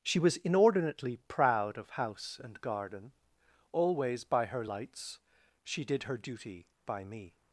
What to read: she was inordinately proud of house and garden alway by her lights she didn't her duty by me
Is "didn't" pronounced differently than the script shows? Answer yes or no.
yes